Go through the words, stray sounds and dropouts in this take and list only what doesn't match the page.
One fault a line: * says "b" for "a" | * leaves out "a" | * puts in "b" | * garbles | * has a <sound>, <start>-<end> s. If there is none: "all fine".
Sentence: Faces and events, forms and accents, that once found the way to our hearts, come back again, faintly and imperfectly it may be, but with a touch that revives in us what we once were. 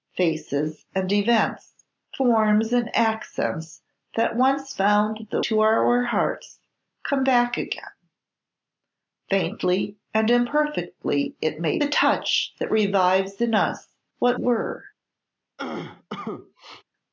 * leaves out "way"
* leaves out "be but with"
* leaves out "we once"
* has a cough, 15.6-16.8 s